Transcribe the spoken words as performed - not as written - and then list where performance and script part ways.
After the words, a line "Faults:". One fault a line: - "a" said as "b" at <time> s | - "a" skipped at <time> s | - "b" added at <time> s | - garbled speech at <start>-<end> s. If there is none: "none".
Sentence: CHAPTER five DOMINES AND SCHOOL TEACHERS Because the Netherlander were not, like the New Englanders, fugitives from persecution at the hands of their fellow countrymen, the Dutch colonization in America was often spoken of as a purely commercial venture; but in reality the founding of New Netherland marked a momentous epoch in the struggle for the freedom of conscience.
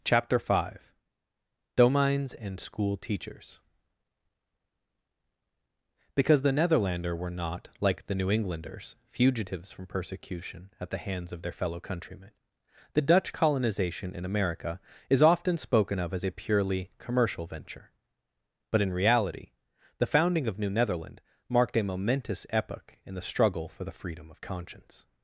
CHAPTER five DOMINES AND SCHOOL TEACHERS Because the Netherlander were not, like the New Englanders, fugitives from persecution at the hands of their fellow countrymen, the Dutch colonization in America is often spoken of as a purely commercial venture; but in reality the founding of New Netherland marked a momentous epoch in the struggle for the freedom of conscience.
Faults:
- "was" said as "is" at 15.1 s